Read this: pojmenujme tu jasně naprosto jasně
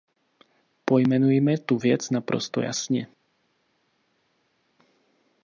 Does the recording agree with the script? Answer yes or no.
no